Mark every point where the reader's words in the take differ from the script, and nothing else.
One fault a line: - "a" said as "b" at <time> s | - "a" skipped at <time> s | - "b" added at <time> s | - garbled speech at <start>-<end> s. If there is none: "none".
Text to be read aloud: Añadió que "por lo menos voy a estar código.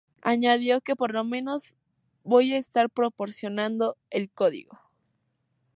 - "proporcionando el" added at 2.9 s